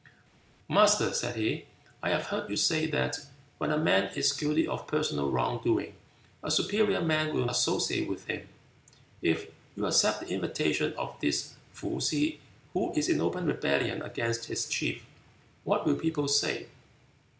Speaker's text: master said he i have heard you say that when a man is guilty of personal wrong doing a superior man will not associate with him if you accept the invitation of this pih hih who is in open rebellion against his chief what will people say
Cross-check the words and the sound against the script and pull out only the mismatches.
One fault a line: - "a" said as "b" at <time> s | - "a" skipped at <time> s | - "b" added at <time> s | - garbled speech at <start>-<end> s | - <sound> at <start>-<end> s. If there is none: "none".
- "not" skipped at 7.5 s